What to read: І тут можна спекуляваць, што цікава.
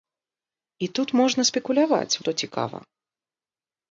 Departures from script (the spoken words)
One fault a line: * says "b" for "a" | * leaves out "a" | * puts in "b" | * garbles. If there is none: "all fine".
all fine